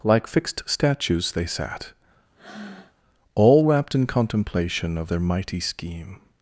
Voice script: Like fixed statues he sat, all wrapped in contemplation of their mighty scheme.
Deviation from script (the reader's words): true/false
true